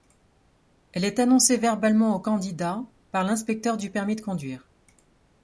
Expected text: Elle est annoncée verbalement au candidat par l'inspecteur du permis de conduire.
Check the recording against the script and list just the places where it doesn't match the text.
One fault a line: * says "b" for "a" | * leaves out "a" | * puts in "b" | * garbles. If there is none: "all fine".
all fine